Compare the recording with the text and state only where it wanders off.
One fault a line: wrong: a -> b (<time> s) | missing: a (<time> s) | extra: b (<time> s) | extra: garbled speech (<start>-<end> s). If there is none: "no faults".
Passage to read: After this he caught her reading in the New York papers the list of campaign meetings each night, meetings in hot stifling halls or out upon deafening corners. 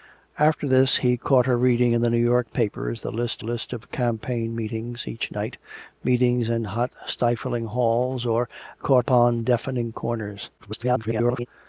extra: list (3.4 s)
wrong: out -> caught (8.7 s)
extra: garbled speech (10.6-11.5 s)